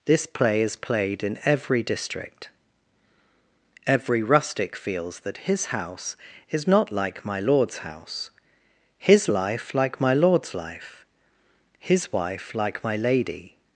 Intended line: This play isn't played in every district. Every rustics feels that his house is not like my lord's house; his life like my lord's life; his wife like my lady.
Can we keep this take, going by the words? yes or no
no